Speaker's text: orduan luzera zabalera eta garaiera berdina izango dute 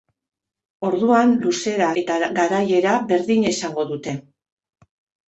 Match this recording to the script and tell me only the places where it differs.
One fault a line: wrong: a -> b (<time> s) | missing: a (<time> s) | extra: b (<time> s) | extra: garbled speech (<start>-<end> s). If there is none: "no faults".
missing: zabalera (1.9 s)